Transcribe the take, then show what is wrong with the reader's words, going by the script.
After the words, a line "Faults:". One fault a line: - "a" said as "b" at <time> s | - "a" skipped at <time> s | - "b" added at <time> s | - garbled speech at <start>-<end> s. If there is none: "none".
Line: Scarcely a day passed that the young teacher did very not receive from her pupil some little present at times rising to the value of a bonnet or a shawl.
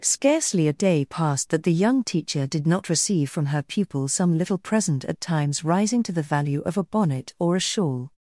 Scarcely a day passed that the young teacher did not receive from her pupil some little present at times rising to the value of a bonnet or a shawl.
Faults:
- "very" skipped at 2.7 s